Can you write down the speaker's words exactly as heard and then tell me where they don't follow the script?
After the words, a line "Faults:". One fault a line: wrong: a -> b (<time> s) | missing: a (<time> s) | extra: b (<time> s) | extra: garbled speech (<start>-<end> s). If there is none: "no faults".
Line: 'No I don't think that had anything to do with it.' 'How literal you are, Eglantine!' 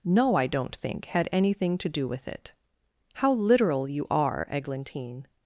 'No I don't think had anything to do with it.' 'How literal you are, Eglantine!'
Faults:
missing: that (1.1 s)